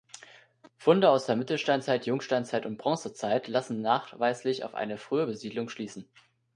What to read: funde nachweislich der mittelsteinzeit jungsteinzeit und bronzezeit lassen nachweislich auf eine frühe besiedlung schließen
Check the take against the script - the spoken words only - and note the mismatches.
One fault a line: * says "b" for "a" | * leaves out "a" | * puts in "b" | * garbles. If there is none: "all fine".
* says "aus" for "nachweislich"